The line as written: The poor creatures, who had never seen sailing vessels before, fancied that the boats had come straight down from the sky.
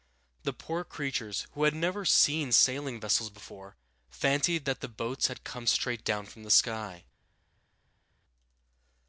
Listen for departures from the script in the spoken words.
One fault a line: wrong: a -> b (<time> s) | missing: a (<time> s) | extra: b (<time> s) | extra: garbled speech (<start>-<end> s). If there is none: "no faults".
no faults